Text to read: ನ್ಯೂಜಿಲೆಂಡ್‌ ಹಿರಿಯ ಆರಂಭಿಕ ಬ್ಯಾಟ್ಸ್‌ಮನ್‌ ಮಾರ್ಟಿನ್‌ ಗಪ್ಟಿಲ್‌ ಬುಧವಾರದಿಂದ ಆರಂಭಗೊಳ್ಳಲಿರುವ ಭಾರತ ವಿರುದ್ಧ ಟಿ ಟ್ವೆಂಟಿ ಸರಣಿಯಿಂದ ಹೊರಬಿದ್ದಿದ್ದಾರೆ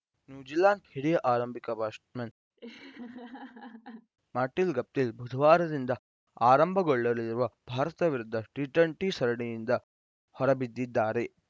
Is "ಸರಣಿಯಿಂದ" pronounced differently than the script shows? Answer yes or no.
no